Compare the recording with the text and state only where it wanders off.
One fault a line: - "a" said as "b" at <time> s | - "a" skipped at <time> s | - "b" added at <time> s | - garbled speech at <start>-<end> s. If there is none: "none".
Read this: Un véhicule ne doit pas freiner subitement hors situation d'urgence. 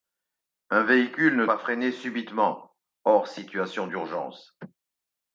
- "doit" skipped at 1.4 s